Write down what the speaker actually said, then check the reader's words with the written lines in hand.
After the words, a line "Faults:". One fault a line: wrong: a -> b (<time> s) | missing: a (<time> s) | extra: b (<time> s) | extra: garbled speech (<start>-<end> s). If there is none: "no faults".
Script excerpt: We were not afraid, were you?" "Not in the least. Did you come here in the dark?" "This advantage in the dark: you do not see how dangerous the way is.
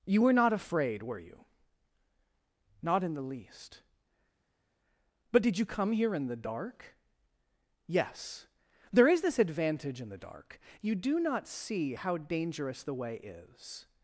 You were not afraid, were you?" "Not in the least. But did you come here in the dark?" "Yes. There is this advantage in the dark: you do not see how dangerous the way is.
Faults:
wrong: We -> You (0.1 s)
extra: But (5.3 s)
extra: Yes There is (7.9 s)